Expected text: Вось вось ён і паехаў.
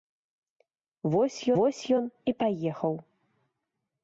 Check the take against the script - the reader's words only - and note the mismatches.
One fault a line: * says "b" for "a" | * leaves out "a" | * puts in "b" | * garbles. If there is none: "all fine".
all fine